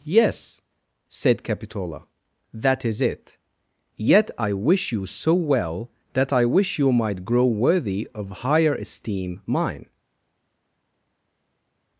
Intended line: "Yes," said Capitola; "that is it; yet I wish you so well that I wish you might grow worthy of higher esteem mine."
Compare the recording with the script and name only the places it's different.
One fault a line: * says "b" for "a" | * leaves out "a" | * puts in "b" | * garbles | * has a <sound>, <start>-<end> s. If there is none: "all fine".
all fine